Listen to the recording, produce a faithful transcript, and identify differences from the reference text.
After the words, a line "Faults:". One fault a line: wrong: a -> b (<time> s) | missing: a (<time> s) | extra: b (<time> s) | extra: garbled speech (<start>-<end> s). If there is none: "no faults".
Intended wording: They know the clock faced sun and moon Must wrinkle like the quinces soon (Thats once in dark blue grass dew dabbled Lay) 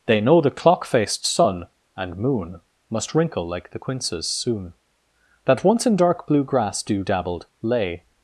They know the clock faced sun and moon Must wrinkle like the quinces soon (That once in dark blue grass dew dabbled Lay)
Faults:
wrong: Thats -> That (5.4 s)